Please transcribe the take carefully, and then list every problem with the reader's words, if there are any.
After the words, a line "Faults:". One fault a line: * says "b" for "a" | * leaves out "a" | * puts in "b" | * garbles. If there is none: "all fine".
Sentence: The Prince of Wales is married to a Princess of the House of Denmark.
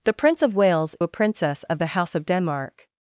The Prince of Wales a Princess of the House of Denmark.
Faults:
* leaves out "is married to"